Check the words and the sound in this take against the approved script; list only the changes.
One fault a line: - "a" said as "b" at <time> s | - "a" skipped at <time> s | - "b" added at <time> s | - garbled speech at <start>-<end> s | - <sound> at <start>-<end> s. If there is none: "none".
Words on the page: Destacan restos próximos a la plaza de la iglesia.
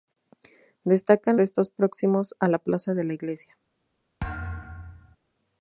- thud at 4.2-5.2 s